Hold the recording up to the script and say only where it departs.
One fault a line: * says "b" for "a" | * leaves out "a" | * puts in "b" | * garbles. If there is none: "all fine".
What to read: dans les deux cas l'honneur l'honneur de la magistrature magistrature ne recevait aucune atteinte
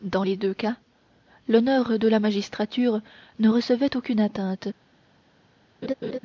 * leaves out "l'honneur"
* leaves out "magistrature"